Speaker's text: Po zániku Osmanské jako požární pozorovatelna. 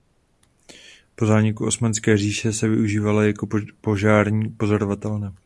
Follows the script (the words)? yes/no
no